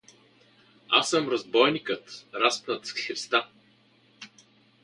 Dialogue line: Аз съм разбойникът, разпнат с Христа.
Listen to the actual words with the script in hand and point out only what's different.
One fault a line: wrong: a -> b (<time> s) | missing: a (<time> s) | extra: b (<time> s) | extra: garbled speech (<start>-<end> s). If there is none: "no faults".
no faults